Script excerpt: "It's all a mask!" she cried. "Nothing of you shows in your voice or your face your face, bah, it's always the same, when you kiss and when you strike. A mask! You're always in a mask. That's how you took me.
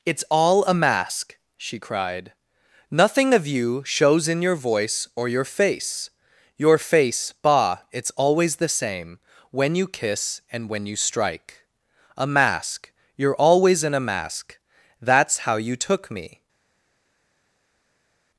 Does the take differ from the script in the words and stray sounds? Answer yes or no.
no